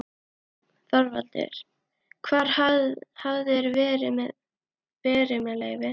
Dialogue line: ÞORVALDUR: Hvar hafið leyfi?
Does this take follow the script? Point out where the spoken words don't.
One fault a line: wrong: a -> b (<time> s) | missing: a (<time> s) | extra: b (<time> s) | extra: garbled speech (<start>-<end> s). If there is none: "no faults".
extra: þér verið með (3.5 s)